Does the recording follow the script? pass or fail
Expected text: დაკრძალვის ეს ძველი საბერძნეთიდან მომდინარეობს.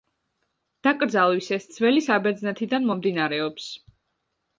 pass